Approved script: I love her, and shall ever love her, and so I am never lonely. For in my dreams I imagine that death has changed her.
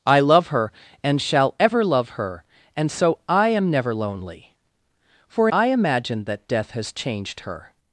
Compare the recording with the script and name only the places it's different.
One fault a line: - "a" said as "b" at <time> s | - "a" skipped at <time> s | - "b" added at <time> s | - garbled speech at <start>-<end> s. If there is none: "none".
- "in my dreams" skipped at 5.5 s